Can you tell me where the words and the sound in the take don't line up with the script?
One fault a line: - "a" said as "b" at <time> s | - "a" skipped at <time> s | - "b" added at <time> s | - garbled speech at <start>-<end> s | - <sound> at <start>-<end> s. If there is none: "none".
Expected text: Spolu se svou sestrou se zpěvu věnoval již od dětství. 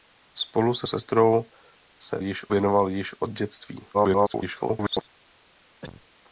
- "svou" skipped at 0.9 s
- "zpěvu" said as "již" at 2.2 s
- garbled speech at 3.9-5.1 s
- cough at 5.8-6.1 s